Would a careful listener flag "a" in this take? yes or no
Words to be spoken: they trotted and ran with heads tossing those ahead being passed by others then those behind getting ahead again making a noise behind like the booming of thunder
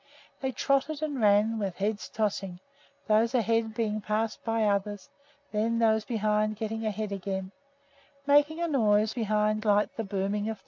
no